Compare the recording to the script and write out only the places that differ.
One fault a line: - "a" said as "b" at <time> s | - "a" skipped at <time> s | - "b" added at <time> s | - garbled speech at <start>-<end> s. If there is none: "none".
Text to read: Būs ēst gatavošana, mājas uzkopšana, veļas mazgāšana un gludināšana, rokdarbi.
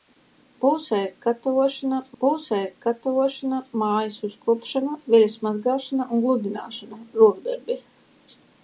- "būs ēst gatavošana" added at 2.2 s